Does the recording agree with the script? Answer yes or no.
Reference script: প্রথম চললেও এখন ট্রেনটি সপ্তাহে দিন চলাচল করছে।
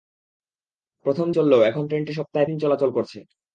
yes